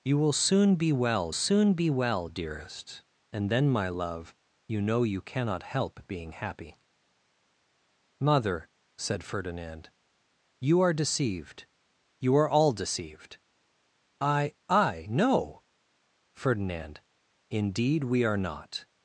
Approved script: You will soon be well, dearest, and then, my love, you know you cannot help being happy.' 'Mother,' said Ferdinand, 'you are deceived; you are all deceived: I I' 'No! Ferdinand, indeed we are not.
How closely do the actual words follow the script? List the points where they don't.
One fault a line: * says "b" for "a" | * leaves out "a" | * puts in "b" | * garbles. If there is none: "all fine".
* puts in "soon be well"